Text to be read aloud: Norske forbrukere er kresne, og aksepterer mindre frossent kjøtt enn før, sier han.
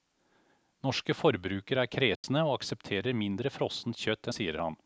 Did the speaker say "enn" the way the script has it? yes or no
no